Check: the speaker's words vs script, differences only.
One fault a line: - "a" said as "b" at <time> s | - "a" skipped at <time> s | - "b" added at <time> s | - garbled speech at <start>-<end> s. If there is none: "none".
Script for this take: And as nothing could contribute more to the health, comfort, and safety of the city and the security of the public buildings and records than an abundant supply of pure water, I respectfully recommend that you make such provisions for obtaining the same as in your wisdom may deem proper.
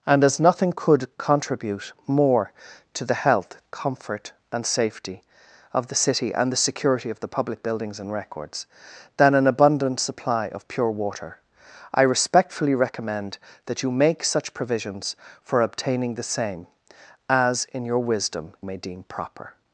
none